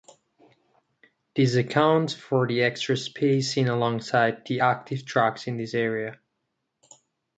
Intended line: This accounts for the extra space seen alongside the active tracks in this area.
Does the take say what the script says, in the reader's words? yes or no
yes